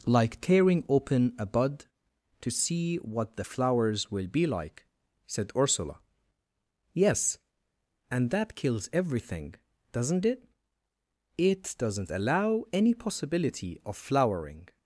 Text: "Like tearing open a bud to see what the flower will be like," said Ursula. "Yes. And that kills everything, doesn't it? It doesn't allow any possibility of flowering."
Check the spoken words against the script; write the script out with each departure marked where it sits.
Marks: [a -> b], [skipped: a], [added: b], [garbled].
"Like tearing open a bud to see what the [flower -> flowers] will be like," said Ursula. "Yes. And that kills everything, doesn't it? It doesn't allow any possibility of flowering."